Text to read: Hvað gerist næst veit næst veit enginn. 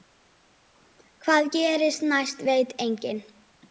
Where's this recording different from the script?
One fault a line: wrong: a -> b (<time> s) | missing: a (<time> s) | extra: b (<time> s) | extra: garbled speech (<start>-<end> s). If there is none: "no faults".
missing: næst veit (2.8 s)